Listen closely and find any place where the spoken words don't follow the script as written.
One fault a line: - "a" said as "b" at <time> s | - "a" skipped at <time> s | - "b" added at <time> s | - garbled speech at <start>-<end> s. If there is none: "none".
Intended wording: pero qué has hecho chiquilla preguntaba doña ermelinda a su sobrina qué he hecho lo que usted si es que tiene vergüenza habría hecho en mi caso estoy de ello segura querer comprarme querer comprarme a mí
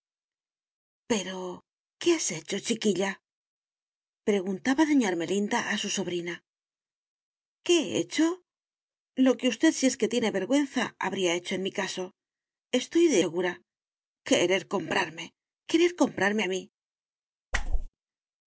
- "ello" skipped at 13.2 s